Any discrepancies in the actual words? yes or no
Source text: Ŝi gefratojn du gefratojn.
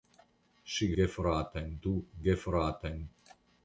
no